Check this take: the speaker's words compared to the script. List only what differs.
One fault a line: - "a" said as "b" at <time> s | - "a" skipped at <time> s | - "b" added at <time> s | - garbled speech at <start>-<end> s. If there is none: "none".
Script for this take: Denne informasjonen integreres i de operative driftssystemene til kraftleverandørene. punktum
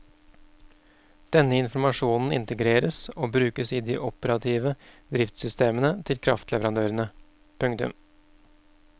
- "og brukes" added at 3.1 s